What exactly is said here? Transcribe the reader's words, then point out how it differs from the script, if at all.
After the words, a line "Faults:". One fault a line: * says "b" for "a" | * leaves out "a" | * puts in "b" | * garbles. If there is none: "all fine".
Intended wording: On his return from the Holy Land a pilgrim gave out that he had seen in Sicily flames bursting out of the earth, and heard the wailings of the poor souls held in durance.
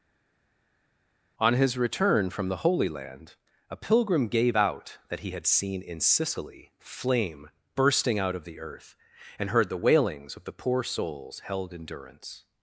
On his return from the Holy Land a pilgrim gave out that he had seen in Sicily flame bursting out of the earth, and heard the wailings of the poor souls held in durance.
Faults:
* says "flame" for "flames"